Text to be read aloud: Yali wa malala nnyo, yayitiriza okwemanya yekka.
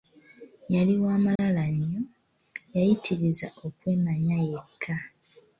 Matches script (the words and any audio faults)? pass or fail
fail